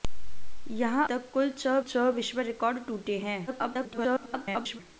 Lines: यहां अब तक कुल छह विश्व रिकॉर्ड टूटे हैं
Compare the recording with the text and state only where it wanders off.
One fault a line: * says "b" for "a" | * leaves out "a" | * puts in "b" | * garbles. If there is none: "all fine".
* leaves out "अब"
* puts in "छह"
* garbles